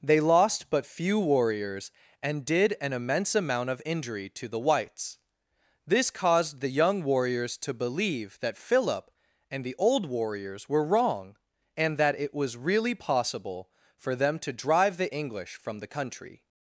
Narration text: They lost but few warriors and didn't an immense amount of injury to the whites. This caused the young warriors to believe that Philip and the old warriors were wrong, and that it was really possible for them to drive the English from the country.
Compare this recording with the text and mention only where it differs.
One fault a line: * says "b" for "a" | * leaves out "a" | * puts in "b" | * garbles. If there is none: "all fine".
* says "did" for "didn't"